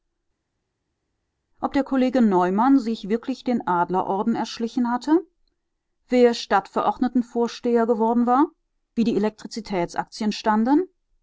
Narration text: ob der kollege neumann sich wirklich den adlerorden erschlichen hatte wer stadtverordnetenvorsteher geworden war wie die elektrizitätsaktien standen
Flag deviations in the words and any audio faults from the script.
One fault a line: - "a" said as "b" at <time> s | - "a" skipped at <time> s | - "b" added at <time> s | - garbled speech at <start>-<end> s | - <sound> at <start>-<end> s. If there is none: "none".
none